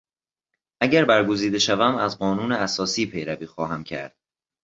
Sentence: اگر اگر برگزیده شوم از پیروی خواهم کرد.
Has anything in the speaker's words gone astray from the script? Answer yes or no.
yes